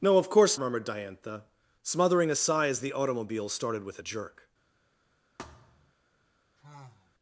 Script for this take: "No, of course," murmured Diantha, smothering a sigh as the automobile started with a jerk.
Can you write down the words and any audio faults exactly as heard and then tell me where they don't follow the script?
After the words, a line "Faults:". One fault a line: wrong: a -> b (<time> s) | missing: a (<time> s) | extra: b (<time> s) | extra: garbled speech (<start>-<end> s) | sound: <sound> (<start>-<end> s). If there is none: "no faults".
"No, of course," murmured Diantha, smothering a sigh as the automobile started with a jerk.
Faults:
sound: thud (5.4-5.9 s)
sound: sigh (6.6-7.2 s)